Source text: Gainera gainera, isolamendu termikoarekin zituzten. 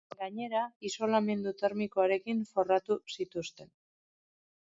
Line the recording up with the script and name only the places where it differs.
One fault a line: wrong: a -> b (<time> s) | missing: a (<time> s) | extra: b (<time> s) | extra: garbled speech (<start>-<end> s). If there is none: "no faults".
missing: gainera (0.6 s)
extra: forratu (2.5 s)